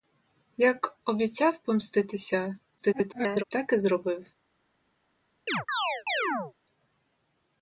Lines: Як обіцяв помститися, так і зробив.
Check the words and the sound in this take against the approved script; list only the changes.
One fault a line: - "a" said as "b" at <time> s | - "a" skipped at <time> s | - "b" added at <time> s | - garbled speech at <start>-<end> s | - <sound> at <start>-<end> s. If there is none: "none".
- garbled speech at 2.8-3.4 s
- chirp at 5.5-6.5 s